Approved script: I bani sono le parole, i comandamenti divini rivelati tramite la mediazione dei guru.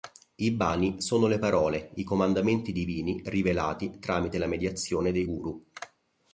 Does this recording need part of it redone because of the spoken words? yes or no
no